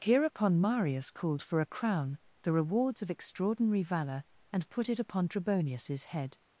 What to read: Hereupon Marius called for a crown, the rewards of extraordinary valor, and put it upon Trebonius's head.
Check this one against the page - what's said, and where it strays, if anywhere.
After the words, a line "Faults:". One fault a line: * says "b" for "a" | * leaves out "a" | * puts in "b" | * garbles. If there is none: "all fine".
Hereupon Marius called for a crown, the rewards of extraordinary valor, and put it upon Trebonius's head.
Faults:
all fine